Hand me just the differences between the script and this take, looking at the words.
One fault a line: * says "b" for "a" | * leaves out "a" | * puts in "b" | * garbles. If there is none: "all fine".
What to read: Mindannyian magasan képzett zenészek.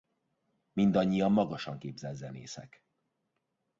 all fine